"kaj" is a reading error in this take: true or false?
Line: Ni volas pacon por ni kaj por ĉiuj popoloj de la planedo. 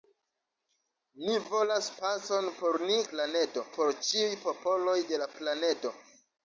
true